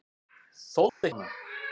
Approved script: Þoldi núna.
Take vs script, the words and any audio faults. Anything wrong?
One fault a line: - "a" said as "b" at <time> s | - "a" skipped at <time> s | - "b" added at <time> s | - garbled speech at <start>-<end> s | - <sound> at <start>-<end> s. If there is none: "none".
- dropout at 0.9-1.0 s